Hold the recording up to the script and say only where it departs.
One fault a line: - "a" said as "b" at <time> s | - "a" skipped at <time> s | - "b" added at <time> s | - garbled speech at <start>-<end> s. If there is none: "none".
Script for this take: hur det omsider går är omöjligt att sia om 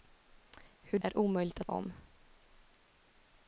- "det omsider går" skipped at 1.0 s
- "sia" skipped at 1.7 s